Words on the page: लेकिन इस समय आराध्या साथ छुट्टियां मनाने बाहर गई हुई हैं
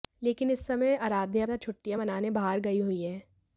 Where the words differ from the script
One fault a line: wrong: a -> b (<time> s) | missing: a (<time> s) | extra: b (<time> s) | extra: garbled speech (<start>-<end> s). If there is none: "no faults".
no faults